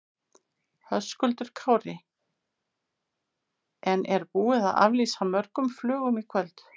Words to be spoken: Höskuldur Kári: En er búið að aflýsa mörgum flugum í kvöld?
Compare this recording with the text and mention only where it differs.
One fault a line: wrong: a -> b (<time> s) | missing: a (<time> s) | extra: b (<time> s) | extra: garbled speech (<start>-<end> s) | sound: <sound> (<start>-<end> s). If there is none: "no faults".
no faults